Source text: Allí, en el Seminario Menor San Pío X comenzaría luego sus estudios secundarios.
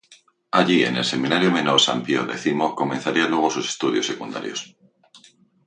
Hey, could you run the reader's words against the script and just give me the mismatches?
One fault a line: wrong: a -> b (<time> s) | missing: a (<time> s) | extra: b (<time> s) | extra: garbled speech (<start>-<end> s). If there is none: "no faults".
no faults